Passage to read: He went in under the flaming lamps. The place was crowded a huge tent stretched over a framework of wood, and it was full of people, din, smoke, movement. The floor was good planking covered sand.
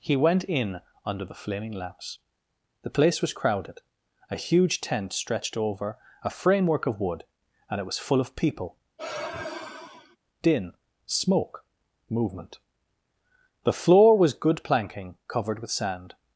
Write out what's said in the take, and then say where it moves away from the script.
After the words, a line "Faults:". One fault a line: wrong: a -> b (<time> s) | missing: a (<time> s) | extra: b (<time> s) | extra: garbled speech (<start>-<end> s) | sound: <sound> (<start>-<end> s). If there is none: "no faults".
He went in under the flaming lamps. The place was crowded a huge tent stretched over a framework of wood, and it was full of people, din, smoke, movement. The floor was good planking covered with sand.
Faults:
sound: sigh (9.0-10.2 s)
extra: with (15.6 s)